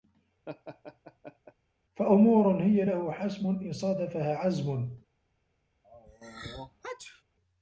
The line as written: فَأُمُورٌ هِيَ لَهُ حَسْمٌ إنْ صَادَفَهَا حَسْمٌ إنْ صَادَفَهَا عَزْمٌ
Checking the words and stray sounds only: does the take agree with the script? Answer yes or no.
no